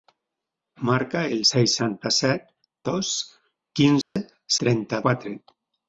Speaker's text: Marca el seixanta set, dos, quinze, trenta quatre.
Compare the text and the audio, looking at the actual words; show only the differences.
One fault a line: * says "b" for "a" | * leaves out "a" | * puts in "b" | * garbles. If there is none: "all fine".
all fine